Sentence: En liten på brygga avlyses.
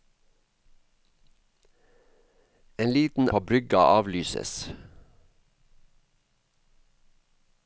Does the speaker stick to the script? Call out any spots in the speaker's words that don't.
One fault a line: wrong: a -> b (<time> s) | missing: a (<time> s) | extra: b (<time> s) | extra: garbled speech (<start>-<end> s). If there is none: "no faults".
no faults